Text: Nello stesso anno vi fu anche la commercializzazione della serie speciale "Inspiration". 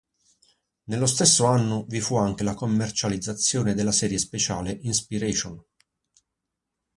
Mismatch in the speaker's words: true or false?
false